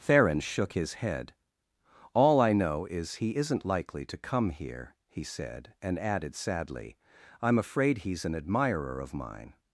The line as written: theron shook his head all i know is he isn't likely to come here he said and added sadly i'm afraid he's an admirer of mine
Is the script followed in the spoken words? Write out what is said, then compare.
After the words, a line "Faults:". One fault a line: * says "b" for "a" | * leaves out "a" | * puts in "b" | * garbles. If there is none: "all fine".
theron shook his head all i know is he isn't likely to come here he said and added sadly i'm afraid he's an admirer of mine
Faults:
all fine